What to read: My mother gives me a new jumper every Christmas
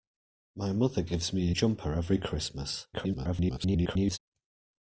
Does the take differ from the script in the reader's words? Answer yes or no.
yes